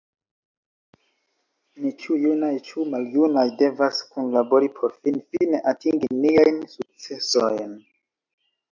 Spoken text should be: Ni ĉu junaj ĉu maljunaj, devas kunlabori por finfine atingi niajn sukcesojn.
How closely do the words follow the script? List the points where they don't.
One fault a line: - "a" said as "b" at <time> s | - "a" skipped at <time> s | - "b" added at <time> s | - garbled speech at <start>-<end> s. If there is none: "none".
none